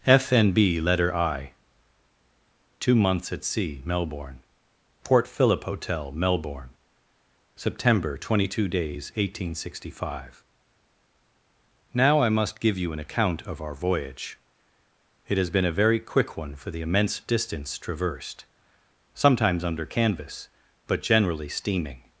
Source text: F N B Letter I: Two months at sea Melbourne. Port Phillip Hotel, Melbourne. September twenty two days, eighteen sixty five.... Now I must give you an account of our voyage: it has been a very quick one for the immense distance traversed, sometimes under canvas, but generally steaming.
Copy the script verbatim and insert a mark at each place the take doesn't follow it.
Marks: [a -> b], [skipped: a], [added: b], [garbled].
F N B Letter I: Two months at sea Melbourne. Port Phillip Hotel, Melbourne. September twenty two days, eighteen sixty five.... Now I must give you an account of our voyage: it has been a very quick one for the immense distance traversed, sometimes under canvas, but generally steaming.